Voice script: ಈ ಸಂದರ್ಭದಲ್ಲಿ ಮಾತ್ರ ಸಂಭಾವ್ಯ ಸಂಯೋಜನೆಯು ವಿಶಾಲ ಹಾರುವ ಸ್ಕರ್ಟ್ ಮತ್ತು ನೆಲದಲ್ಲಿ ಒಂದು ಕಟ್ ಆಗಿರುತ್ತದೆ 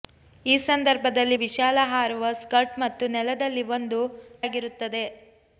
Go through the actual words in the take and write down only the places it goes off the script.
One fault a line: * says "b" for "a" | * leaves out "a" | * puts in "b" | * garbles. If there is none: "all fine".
* leaves out "ಮಾತ್ರ ಸಂಭಾವ್ಯ ಸಂಯೋಜನೆಯು"
* leaves out "ಕಟ್"